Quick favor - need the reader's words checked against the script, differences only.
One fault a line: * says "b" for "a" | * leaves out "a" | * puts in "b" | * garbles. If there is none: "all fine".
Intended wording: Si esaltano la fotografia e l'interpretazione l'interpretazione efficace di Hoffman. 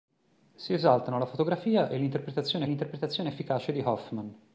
all fine